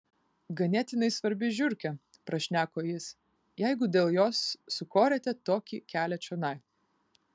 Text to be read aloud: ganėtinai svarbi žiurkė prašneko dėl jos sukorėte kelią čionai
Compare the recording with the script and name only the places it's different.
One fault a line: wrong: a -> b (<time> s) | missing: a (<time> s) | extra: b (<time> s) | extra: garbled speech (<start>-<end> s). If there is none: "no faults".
extra: jis jeigu (2.9 s)
extra: tokį (5.5 s)